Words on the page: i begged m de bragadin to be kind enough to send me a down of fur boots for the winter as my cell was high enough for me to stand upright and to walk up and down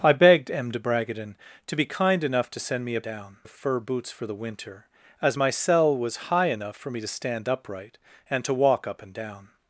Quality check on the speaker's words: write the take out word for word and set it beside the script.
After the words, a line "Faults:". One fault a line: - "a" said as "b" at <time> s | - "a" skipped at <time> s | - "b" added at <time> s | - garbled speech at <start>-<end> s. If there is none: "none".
i begged m de bragadin to be kind enough to send me a down of fur boots for the winter as my cell was high enough for me to stand upright and to walk up and down
Faults:
none